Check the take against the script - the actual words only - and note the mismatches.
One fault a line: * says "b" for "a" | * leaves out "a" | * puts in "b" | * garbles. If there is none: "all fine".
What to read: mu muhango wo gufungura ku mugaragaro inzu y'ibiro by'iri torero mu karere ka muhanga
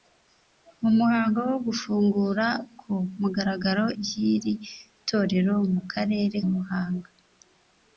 * leaves out "inzu y'ibiro"
* leaves out "ka"